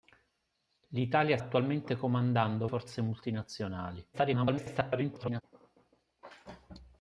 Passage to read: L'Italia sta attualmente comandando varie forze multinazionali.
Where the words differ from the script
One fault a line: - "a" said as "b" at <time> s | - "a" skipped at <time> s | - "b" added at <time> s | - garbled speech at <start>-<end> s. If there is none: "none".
- "sta" skipped at 1.4 s
- "varie" skipped at 2.7 s
- garbled speech at 4.1-5.4 s